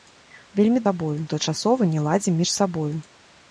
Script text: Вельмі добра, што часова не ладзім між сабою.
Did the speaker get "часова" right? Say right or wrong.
right